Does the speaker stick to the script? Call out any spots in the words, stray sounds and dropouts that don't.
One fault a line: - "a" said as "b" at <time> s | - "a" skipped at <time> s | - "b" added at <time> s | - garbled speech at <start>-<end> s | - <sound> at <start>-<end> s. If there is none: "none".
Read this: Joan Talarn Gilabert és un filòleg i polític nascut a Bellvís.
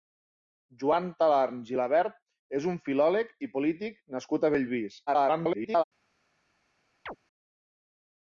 - garbled speech at 5.1-5.8 s
- chirp at 7.1-7.2 s